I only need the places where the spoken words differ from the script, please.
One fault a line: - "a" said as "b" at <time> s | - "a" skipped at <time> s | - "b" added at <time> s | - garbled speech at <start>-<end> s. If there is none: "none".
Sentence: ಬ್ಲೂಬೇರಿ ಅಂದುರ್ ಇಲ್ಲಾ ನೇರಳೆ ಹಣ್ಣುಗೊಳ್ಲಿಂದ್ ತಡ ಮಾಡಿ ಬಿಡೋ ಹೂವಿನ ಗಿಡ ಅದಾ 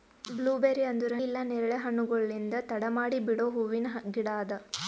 none